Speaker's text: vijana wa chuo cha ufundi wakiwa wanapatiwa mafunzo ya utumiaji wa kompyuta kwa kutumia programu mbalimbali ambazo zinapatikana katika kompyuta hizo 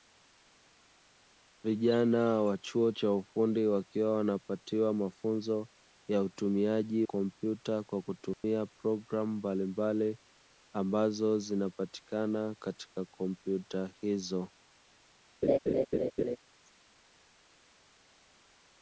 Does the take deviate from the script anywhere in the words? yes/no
yes